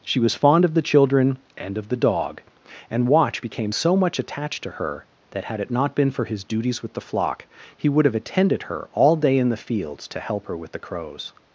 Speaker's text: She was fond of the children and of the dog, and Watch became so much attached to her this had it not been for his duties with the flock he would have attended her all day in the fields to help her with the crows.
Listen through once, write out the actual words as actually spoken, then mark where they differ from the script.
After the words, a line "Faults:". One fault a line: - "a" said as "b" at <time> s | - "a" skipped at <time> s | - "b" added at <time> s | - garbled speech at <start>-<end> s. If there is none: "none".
She was fond of the children and of the dog, and Watch became so much attached to her that had it not been for his duties with the flock he would have attended her all day in the fields to help her with the crows.
Faults:
- "this" said as "that" at 5.3 s